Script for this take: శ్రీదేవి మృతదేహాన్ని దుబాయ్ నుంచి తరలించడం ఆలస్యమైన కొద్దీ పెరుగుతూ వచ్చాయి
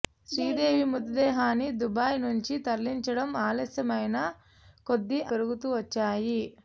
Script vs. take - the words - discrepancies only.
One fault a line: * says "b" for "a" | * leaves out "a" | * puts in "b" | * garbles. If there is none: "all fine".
all fine